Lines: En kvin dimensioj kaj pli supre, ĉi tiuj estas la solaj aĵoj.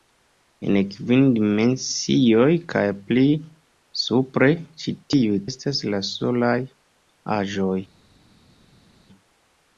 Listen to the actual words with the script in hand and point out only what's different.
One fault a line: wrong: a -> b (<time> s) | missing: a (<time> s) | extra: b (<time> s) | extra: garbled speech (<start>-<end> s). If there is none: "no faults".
no faults